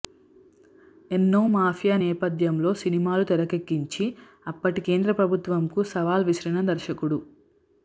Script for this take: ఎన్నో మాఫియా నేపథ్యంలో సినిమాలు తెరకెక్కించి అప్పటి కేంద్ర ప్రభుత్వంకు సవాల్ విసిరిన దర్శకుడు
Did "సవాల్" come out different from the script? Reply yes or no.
no